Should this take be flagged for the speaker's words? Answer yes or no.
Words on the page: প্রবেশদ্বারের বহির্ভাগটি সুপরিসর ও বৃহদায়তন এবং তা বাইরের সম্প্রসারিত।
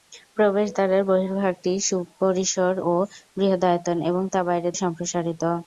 no